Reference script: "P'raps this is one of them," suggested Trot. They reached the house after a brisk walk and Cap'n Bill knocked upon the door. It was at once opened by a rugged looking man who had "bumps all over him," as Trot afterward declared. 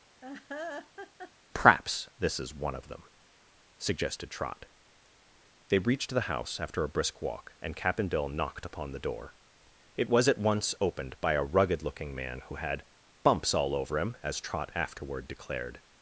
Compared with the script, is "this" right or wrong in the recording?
right